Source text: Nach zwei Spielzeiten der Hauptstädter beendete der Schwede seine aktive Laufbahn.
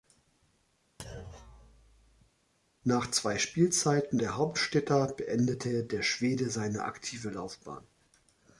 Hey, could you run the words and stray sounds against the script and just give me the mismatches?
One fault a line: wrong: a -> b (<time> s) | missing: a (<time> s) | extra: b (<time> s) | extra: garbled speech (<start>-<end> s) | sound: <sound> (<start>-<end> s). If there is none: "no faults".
sound: thud (1.0-2.3 s)